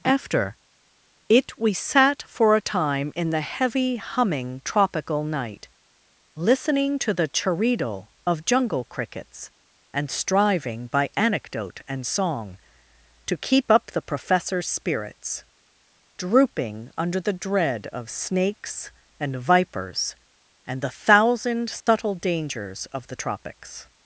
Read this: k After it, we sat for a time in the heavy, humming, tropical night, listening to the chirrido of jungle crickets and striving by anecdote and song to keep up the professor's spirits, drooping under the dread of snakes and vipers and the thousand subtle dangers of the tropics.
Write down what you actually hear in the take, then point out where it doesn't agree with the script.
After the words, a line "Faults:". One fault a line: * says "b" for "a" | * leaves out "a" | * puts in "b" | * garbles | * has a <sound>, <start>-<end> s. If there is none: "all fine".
After it, we sat for a time in the heavy, humming, tropical night, listening to the chirrido of jungle crickets and striving by anecdote and song to keep up the professor's spirits, drooping under the dread of snakes and vipers and the thousand subtle dangers of the tropics.
Faults:
* leaves out "k"
* has a dropout, 21.8-21.9 s